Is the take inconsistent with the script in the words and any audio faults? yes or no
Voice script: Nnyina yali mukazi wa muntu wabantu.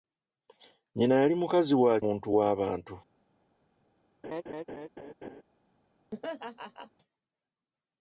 yes